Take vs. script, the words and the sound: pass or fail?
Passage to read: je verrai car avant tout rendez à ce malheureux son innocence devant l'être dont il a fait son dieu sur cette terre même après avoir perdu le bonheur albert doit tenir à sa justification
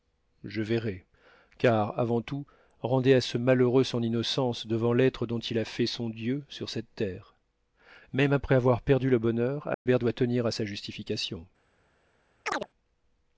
fail